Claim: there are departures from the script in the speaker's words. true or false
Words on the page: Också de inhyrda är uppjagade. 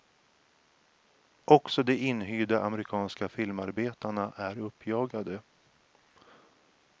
true